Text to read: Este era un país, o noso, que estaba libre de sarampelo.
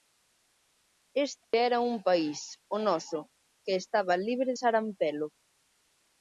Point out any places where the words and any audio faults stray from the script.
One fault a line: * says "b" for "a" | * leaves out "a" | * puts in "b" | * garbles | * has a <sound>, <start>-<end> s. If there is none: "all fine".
* has a dropout, 1.4-1.5 s
* leaves out "de"